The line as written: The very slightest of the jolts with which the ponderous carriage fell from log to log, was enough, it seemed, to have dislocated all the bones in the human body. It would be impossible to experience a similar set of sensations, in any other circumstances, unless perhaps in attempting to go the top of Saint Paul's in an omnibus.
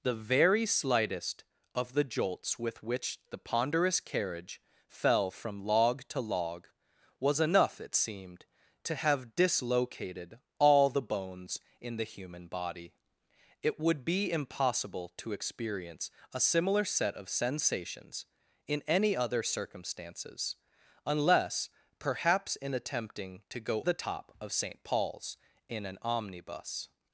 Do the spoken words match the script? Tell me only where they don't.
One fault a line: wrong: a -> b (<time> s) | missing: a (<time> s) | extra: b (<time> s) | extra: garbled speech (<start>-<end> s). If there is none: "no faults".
no faults